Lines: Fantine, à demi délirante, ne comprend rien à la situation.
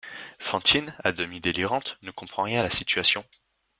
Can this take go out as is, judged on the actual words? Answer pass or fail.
pass